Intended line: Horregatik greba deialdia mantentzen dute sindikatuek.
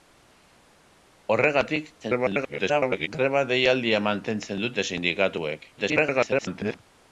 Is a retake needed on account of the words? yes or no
yes